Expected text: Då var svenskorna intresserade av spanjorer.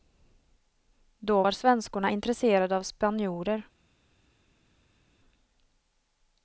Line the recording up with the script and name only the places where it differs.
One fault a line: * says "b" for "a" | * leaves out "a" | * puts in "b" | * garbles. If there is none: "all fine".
all fine